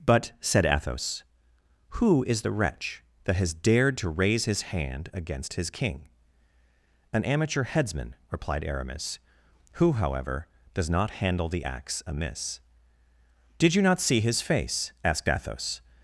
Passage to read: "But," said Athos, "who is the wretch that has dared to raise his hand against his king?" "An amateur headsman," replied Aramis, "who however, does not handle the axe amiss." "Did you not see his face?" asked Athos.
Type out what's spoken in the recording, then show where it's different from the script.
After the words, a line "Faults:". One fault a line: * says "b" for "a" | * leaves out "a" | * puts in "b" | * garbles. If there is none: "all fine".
"But," said Athos, "who is the wretch that has dared to raise his hand against his king?" "An amateur headsman," replied Aramis, "who however, does not handle the axe amiss." "Did you not see his face?" asked Athos.
Faults:
all fine